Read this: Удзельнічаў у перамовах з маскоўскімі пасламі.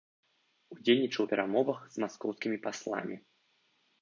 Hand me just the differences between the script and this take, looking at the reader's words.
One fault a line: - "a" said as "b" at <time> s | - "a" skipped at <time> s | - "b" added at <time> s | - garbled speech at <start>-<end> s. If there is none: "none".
none